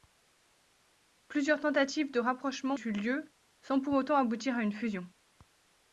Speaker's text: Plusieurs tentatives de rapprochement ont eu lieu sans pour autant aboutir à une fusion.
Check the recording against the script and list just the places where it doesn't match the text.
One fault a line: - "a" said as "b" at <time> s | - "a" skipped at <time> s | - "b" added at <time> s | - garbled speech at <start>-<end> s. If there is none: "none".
- "ont" skipped at 2.7 s